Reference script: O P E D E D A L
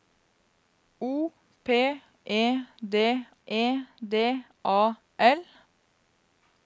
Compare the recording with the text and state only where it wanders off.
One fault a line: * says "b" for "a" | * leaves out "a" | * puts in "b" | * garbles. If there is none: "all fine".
all fine